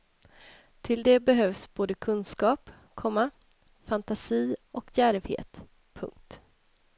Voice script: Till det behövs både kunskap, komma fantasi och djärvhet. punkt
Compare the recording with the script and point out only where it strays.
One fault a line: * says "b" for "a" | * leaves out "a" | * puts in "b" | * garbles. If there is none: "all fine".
all fine